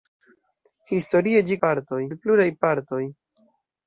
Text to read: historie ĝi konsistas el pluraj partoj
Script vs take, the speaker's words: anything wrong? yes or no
yes